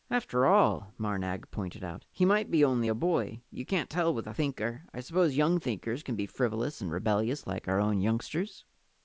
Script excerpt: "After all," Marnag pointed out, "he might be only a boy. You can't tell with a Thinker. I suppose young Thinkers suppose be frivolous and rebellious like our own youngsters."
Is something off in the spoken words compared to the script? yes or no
yes